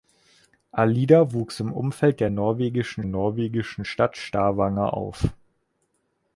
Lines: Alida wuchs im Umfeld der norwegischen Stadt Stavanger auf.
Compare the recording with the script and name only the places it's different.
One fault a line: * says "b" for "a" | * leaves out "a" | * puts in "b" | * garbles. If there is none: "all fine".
* puts in "norwegischen"